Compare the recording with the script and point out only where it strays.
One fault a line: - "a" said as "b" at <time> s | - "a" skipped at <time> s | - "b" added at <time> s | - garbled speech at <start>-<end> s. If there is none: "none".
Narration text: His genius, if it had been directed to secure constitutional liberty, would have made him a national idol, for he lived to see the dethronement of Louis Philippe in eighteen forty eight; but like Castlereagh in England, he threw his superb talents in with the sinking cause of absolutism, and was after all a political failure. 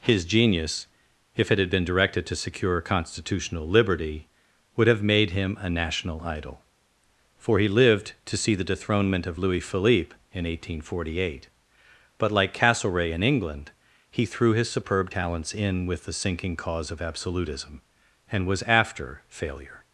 - "all a political" skipped at 19.2 s